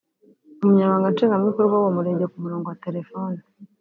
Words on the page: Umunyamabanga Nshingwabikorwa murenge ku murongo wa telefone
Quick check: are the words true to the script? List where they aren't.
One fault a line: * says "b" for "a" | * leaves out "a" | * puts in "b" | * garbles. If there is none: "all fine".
* puts in "w'uwo"